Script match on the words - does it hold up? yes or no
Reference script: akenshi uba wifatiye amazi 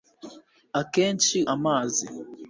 no